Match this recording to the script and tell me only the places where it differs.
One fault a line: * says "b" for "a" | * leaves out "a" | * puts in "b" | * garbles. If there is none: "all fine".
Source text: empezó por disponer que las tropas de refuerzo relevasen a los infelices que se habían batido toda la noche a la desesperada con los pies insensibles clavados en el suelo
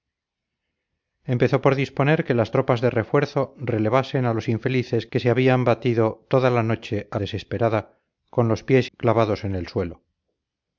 * leaves out "la"
* leaves out "insensibles"